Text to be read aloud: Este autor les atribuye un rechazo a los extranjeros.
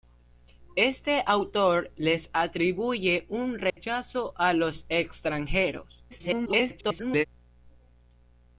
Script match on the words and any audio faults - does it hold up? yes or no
no